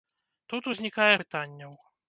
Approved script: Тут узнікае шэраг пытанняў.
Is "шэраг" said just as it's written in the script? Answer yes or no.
no